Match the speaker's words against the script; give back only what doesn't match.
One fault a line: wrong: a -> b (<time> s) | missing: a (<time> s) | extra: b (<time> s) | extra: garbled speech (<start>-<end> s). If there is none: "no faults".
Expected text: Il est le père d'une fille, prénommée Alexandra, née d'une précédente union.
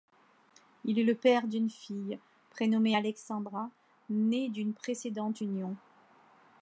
no faults